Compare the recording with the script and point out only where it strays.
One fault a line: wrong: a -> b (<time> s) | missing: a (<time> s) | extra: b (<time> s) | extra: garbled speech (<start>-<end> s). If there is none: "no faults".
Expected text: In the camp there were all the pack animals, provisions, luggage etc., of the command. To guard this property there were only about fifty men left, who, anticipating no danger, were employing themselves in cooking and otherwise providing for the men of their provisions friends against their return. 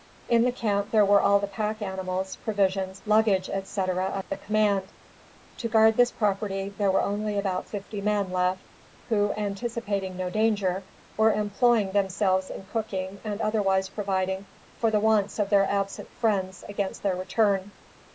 wrong: men -> wants (15.0 s)
wrong: provisions -> absent (15.7 s)